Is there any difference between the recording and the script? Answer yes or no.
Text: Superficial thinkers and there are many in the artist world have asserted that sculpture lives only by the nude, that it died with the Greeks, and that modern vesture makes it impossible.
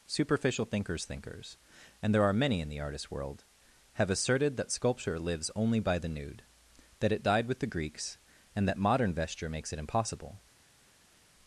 yes